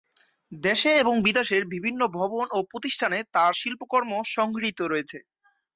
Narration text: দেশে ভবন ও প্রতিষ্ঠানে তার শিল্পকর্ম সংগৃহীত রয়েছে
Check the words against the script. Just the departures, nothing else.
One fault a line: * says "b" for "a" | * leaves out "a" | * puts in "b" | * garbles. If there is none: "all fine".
* puts in "এবং বিদেশের বিভিন্ন"